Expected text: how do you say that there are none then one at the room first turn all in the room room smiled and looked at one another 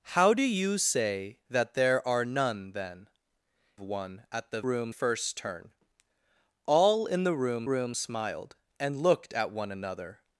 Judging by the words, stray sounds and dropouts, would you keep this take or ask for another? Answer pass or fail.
pass